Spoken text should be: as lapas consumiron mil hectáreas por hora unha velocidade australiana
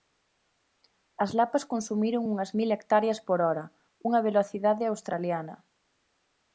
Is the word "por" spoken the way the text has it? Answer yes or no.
yes